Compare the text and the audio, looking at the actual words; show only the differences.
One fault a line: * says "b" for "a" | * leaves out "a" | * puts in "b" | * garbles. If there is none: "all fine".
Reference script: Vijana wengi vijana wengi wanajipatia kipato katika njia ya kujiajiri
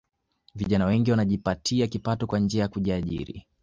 * leaves out "vijana wengi"
* says "kwa" for "katika"